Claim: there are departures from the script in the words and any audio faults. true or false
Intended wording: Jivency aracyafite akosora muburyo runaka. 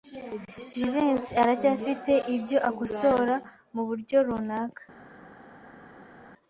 true